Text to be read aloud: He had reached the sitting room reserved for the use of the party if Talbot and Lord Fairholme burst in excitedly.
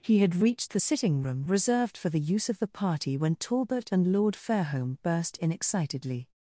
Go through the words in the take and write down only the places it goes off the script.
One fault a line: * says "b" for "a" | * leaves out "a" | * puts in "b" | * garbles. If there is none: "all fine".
* says "when" for "if"